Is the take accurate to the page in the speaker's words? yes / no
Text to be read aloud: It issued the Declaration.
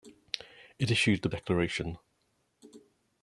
yes